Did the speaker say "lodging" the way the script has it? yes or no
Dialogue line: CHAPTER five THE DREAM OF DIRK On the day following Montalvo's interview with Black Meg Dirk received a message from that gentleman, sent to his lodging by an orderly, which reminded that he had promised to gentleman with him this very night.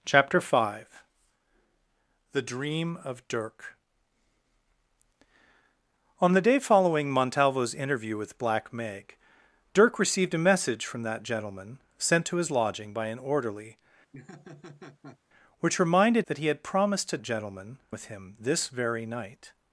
yes